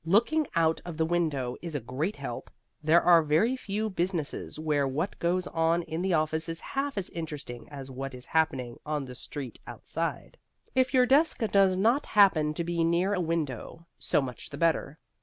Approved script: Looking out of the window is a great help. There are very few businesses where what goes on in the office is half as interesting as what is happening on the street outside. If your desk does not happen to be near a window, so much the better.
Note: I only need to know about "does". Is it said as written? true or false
true